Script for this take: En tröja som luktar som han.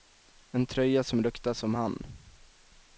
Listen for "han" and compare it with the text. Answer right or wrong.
right